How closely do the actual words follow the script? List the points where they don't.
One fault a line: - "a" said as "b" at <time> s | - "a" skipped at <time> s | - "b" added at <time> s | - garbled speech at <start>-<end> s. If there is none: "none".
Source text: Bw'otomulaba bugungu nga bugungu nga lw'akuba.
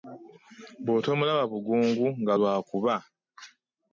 - "bugungu nga" skipped at 2.3 s